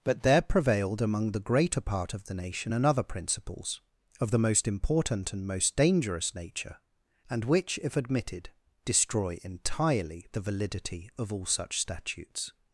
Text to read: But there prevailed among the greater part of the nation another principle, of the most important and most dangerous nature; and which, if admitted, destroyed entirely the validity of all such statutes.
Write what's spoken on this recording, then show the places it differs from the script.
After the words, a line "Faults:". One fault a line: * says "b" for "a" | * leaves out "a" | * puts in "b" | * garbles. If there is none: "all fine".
But there prevailed among the greater part of the nation another principles, of the most important and most dangerous nature; and which, if admitted, destroy entirely the validity of all such statutes.
Faults:
* says "principles" for "principle"
* says "destroy" for "destroyed"